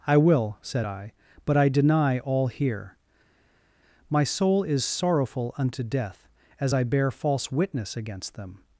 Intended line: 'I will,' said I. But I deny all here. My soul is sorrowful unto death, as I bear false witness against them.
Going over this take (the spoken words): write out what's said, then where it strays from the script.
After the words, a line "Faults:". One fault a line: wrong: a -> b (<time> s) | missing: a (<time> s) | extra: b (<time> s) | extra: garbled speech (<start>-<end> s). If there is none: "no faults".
'I will,' said I. But I deny all here. My soul is sorrowful unto death, as I bear false witness against them.
Faults:
no faults